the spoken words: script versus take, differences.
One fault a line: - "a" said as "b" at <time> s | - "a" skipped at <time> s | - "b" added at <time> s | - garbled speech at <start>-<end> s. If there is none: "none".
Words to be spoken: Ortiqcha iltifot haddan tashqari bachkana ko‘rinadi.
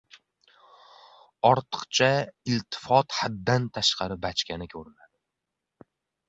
none